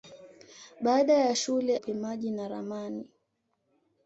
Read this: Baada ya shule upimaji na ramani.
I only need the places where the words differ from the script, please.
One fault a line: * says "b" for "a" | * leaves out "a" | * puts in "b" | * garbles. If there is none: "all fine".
all fine